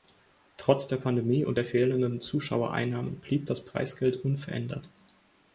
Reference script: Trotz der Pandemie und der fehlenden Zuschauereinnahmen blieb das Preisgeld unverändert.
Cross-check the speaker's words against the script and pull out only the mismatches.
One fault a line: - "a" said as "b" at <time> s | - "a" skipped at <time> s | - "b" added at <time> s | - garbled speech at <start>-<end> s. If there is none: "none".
none